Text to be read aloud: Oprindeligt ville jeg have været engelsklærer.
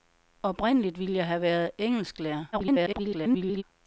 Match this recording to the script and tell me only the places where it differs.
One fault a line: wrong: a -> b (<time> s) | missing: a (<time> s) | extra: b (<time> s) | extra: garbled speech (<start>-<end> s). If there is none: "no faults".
extra: garbled speech (2.5-3.6 s)